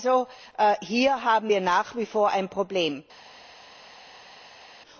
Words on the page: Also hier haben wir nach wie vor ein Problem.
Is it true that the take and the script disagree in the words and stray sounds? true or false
false